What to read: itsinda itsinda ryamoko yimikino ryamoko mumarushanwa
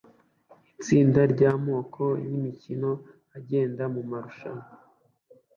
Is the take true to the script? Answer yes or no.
no